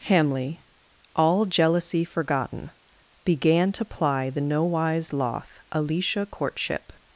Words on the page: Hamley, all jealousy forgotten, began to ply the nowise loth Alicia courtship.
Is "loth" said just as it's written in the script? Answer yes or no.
yes